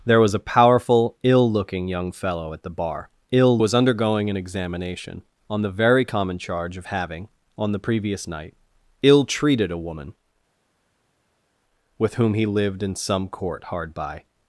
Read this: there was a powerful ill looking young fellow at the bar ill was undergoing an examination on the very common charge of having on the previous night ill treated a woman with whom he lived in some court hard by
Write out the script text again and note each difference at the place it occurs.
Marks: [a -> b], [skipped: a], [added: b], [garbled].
there was a powerful ill looking young fellow at the bar ill was undergoing an examination on the very common charge of having on the previous night ill treated a woman with whom he lived in some court hard by